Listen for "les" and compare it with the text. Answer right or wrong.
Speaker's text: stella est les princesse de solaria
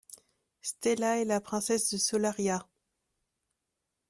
wrong